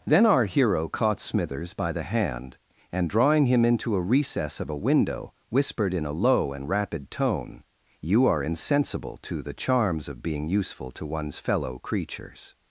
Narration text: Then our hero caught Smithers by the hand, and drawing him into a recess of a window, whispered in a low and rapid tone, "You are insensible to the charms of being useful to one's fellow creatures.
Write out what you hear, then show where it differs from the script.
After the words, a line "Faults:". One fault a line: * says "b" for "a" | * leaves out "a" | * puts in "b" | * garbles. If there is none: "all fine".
Then our hero caught Smithers by the hand, and drawing him into a recess of a window, whispered in a low and rapid tone, "You are insensible to the charms of being useful to one's fellow creatures.
Faults:
all fine